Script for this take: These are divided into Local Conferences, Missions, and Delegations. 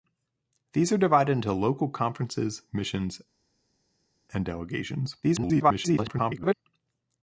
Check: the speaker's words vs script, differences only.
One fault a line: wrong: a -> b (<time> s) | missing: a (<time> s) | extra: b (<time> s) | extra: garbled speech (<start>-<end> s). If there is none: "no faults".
extra: garbled speech (5.2-6.5 s)